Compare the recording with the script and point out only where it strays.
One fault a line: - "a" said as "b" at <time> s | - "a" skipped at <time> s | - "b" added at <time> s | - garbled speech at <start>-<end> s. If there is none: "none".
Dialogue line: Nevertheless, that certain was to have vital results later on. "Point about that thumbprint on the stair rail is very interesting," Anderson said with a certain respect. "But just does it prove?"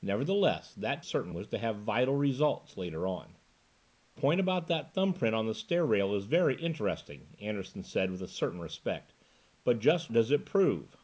none